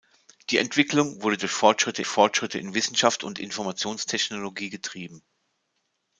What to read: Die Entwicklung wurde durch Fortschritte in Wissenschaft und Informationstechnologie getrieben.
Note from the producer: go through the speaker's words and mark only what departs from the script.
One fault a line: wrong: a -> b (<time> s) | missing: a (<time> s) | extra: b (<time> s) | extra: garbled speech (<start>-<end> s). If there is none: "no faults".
extra: Fortschritte (2.1 s)